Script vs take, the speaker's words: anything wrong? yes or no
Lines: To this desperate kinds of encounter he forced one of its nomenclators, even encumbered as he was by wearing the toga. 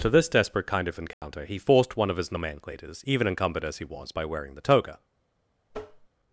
yes